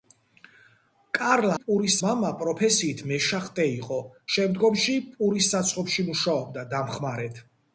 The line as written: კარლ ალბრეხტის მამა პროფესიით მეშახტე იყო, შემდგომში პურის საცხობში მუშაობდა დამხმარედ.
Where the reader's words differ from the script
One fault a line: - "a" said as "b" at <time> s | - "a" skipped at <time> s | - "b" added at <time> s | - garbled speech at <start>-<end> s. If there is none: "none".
- "ალბრეხტის" said as "პურის" at 1.6 s